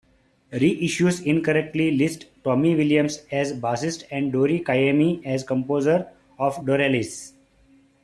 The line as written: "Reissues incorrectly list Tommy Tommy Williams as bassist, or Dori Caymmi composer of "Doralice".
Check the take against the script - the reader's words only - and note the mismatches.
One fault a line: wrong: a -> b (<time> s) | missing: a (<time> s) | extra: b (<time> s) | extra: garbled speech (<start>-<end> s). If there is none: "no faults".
missing: Tommy (2.7 s)
wrong: or -> and (4.1 s)
extra: as (5.2 s)